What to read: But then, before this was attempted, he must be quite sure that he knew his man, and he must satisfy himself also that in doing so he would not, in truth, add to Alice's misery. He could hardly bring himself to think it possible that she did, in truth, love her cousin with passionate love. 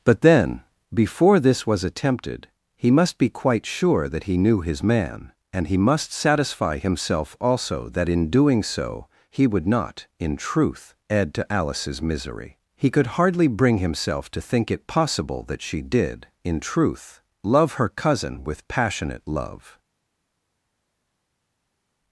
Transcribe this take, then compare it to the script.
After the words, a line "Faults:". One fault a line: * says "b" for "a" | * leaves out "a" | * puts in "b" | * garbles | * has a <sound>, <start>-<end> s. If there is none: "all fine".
But then, before this was attempted, he must be quite sure that he knew his man, and he must satisfy himself also that in doing so he would not, in truth, add to Alice's misery. He could hardly bring himself to think it possible that she did, in truth, love her cousin with passionate love.
Faults:
all fine